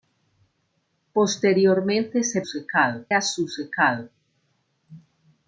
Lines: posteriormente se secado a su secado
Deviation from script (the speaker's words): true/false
false